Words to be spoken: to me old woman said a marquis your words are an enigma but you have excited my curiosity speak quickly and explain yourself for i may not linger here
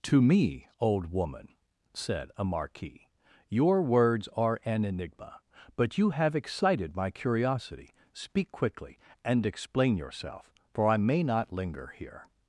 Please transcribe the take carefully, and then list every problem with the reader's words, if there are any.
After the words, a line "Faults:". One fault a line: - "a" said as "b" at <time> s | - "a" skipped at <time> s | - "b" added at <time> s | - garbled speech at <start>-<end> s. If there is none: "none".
to me old woman said a marquis your words are an enigma but you have excited my curiosity speak quickly and explain yourself for i may not linger here
Faults:
none